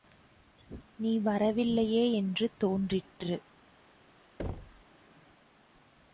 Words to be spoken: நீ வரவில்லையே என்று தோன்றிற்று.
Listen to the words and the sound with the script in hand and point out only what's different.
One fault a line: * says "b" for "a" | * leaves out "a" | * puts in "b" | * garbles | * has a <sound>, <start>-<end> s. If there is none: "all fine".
* has a thud, 4.4-4.8 s